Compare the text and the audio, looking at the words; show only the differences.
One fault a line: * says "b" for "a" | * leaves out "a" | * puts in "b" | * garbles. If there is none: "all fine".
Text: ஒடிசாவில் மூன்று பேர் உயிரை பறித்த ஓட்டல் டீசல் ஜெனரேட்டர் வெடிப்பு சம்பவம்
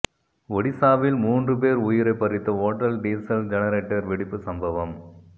all fine